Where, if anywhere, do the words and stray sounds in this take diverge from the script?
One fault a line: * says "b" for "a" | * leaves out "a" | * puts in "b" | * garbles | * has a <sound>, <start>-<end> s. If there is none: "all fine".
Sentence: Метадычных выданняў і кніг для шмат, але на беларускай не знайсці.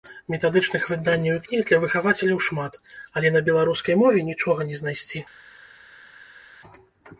* puts in "выхавацеляў"
* puts in "мове нічога"